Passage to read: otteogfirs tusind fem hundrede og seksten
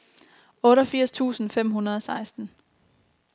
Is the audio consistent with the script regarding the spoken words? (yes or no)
yes